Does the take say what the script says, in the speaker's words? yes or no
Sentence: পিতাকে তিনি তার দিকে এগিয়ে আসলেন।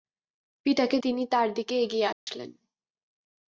yes